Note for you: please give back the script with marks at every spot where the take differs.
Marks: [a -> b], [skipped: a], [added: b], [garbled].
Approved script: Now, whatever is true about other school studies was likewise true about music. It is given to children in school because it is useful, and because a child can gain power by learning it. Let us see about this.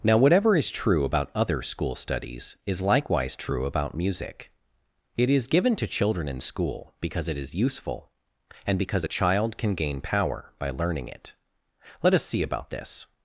Now, whatever is true about other school studies [was -> is] likewise true about music. It is given to children in school because it is useful, and because a child can gain power by learning it. Let us see about this.